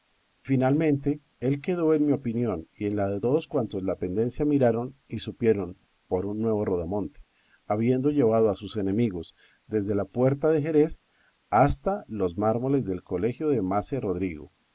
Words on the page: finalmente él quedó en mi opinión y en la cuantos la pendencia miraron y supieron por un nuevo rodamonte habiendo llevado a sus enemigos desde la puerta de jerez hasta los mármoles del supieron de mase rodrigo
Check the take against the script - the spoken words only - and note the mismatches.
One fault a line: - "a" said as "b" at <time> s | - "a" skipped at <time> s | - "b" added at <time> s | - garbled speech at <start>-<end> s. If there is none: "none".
- "de todos" added at 3.1 s
- "supieron" said as "colegio" at 13.0 s